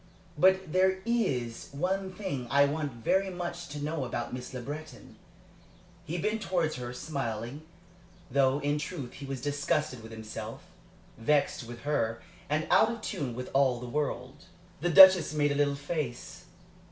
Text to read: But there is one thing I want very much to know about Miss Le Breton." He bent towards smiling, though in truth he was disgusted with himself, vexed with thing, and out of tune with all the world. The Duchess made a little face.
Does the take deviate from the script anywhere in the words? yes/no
yes